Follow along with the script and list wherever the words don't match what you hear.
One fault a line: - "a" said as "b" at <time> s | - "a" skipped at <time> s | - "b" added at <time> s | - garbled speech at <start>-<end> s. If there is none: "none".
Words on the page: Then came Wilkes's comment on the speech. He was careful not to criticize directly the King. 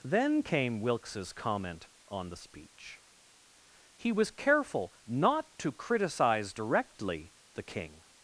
none